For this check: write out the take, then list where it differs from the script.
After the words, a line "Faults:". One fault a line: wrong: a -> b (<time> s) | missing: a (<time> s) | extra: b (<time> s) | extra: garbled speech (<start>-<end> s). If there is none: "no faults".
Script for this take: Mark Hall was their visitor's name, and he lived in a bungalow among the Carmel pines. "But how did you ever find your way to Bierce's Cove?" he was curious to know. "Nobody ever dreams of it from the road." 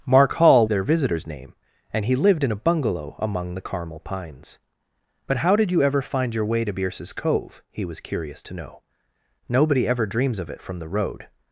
Mark Hall their visitor's name, and he lived in a bungalow among the Carmel pines. "But how did you ever find your way to Bierce's Cove?" he was curious to know. "Nobody ever dreams of it from the road."
Faults:
missing: was (0.7 s)